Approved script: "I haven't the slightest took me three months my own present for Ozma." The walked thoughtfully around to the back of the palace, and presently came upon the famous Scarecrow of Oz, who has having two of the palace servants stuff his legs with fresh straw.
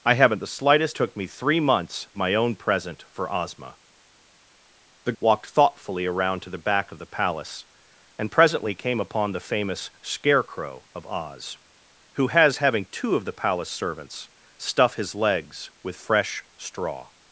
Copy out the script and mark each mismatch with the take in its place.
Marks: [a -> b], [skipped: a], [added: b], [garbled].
"I haven't the slightest took me three months my own present for Ozma." The walked thoughtfully around to the back of the palace, and presently came upon the famous Scarecrow of Oz, who has having two of the palace servants stuff his legs with fresh straw.